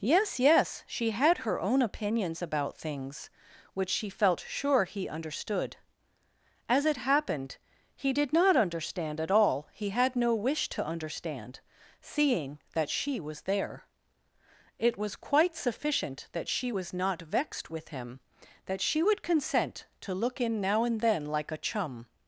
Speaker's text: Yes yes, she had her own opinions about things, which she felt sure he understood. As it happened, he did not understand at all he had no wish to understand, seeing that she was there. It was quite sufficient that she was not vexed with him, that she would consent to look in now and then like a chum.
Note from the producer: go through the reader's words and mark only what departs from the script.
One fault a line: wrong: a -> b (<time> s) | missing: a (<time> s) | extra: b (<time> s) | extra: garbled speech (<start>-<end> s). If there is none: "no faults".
no faults